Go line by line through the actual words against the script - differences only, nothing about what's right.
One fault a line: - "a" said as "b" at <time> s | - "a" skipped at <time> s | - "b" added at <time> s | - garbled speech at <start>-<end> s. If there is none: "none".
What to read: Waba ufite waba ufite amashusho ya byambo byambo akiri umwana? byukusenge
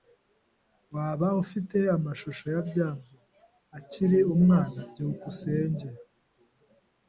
- "waba ufite" skipped at 1.8 s
- "byambo" skipped at 3.1 s